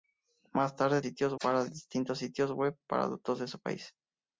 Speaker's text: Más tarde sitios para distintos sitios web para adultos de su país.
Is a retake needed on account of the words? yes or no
no